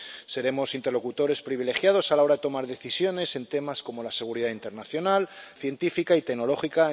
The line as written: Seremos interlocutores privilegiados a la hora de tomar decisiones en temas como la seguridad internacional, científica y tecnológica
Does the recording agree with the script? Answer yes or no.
yes